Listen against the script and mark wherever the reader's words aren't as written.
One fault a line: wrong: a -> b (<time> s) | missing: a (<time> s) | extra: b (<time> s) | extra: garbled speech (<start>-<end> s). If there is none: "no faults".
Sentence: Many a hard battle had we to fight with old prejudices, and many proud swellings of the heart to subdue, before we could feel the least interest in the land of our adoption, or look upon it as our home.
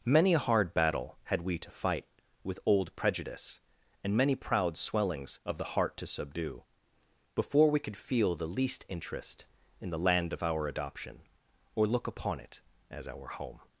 wrong: prejudices -> prejudice (3.0 s)